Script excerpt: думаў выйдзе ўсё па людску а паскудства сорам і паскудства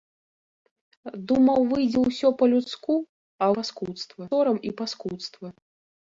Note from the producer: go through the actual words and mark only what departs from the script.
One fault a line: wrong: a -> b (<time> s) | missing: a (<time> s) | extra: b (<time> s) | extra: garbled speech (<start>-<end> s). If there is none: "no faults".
no faults